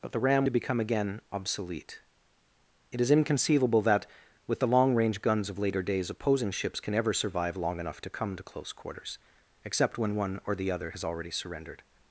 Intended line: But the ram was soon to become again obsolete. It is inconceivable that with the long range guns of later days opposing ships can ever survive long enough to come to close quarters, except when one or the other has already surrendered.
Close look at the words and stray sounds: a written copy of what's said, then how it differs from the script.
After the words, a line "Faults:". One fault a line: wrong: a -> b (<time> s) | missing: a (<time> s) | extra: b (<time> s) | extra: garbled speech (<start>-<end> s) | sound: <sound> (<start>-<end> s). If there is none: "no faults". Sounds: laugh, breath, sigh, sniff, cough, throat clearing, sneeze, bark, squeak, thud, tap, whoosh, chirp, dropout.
But the ram to become again obsolete. It is inconceivable that with the long range guns of later days opposing ships can ever survive long enough to come to close quarters, except when one or the other has already surrendered.
Faults:
missing: was soon (0.5 s)